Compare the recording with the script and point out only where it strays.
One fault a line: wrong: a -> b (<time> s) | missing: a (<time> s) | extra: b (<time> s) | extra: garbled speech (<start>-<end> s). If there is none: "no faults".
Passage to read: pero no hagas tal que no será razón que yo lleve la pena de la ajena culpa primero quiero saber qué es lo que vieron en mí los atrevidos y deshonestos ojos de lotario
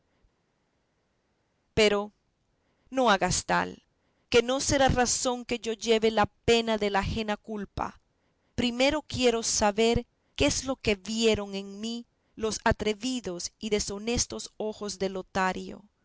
no faults